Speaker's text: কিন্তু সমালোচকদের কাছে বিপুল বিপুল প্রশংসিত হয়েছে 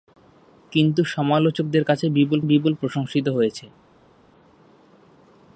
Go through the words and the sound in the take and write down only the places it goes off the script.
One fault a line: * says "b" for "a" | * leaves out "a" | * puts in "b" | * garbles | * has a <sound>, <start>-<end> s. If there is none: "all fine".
all fine